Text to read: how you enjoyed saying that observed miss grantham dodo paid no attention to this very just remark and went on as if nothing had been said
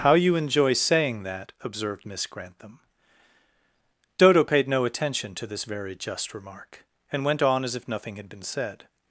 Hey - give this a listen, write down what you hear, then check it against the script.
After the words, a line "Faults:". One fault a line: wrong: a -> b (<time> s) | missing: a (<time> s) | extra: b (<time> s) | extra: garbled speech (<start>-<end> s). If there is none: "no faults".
how you enjoy saying that observed miss grantham dodo paid no attention to this very just remark and went on as if nothing had been said
Faults:
wrong: enjoyed -> enjoy (0.3 s)